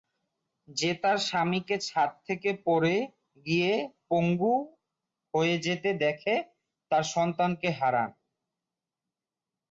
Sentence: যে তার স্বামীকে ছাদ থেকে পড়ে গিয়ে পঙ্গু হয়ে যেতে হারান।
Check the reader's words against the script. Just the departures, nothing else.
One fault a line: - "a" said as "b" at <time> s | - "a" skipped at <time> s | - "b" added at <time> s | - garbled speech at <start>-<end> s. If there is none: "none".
- "দেখে তার সন্তানকে" added at 6.0 s